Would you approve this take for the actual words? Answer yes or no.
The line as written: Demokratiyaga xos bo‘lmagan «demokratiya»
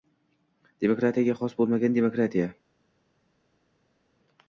yes